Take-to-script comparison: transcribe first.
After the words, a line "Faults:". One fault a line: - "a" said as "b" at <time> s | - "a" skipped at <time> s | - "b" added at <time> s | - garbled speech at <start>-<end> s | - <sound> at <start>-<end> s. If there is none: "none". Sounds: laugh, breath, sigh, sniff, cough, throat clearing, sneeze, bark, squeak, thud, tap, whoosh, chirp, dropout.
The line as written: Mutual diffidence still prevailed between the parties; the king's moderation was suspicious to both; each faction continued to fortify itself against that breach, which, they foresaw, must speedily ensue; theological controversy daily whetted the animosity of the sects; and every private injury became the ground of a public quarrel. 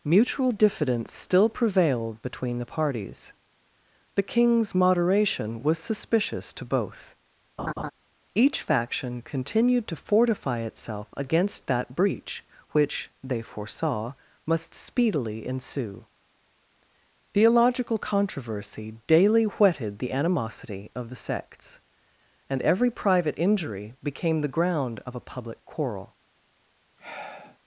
Mutual diffidence still prevailed between the parties; the king's moderation was suspicious to both; each faction continued to fortify itself against that breach, which, they foresaw, must speedily ensue; theological controversy daily whetted the animosity of the sects; and every private injury became the ground of a public quarrel.
Faults:
- laugh at 7.6-7.9 s
- sigh at 27.0-27.6 s